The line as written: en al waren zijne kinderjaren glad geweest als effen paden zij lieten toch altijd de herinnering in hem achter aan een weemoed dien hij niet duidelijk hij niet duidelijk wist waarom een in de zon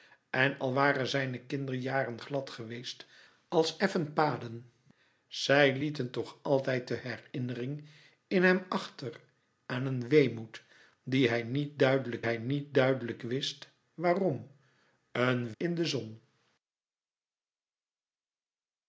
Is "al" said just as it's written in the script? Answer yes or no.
yes